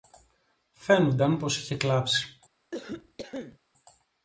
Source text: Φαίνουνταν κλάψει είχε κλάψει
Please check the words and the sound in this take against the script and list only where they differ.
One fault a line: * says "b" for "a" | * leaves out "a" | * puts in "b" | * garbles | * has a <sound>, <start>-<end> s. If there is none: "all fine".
* says "πως" for "κλάψει"
* has a cough, 2.7-3.6 s